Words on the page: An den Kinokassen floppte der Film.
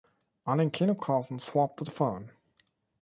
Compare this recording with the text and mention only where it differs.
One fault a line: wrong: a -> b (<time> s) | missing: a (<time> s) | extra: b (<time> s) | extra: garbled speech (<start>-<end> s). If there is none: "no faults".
no faults